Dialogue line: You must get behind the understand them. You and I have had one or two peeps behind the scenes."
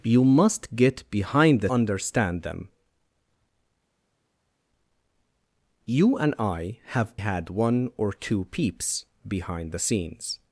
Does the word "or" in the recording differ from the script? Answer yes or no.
no